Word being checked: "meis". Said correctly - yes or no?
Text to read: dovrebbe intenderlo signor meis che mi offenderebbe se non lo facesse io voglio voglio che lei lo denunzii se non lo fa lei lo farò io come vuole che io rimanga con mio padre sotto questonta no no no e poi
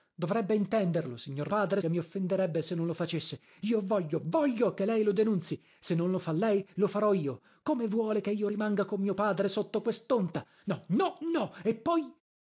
no